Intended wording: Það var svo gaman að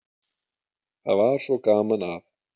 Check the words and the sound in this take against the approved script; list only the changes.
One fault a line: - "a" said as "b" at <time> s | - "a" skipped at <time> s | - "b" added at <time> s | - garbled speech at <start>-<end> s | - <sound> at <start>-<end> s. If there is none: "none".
none